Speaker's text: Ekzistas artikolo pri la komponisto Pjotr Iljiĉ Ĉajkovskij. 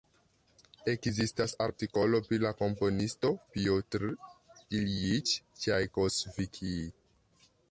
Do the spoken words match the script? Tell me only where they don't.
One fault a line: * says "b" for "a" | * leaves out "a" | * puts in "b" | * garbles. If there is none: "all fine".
all fine